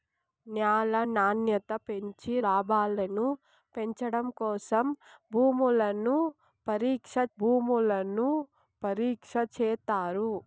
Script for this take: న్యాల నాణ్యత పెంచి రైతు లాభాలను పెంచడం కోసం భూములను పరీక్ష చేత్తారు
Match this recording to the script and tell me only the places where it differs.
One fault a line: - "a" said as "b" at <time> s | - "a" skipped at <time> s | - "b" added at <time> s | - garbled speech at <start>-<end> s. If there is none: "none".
- "రైతు" skipped at 2.3 s
- "భూములను పరీక్ష" added at 7.4 s